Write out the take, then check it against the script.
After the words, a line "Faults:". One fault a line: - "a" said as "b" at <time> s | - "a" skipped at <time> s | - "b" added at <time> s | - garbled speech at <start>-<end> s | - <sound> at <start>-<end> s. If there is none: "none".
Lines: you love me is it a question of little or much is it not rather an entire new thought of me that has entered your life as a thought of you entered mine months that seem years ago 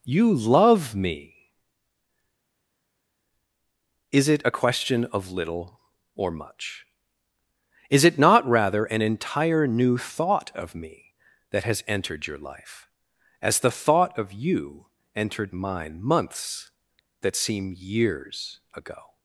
you love me is it a question of little or much is it not rather an entire new thought of me that has entered your life as the thought of you entered mine months that seem years ago
Faults:
- "a" said as "the" at 13.6 s